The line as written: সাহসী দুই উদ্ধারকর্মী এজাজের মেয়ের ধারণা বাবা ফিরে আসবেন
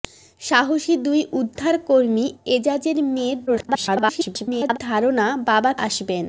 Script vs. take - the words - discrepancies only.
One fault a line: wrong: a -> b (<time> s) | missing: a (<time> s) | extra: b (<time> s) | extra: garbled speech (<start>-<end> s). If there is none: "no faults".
extra: garbled speech (3.5-4.8 s)
missing: ফিরে (5.7 s)